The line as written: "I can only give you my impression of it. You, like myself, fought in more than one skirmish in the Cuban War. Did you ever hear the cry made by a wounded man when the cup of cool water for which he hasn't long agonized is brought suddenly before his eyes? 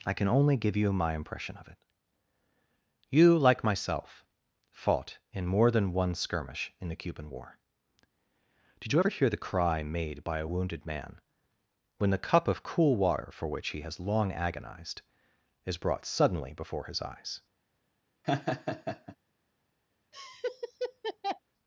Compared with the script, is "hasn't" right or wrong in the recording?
wrong